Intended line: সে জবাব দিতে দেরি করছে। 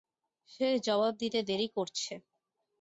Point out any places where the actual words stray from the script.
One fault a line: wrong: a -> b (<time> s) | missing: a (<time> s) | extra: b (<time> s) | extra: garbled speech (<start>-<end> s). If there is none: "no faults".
no faults